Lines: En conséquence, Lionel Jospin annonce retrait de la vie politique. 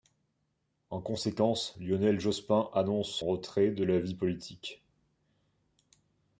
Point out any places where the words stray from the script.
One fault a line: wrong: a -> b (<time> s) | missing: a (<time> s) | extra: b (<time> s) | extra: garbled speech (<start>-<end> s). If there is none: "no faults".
no faults